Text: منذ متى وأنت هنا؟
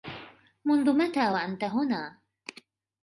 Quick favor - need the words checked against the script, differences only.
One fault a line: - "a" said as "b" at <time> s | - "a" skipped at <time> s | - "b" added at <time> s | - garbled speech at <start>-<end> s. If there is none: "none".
none